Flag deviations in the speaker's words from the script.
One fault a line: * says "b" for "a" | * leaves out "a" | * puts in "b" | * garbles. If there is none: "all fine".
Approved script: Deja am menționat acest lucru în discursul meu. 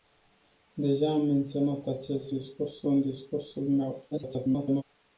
* says "discursul" for "lucru"
* garbles